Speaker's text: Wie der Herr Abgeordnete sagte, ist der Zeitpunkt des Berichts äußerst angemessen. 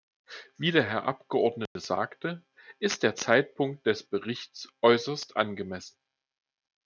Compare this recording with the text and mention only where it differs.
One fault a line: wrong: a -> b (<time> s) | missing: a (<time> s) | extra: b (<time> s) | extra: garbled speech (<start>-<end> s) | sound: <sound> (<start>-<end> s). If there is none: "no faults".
sound: dropout (1.7-1.8 s)